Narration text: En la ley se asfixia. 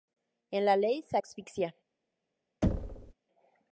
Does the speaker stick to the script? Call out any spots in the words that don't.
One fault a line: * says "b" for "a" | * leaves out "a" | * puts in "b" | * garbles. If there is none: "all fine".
all fine